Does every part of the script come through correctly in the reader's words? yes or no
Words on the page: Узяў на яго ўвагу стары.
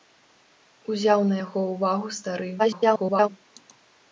no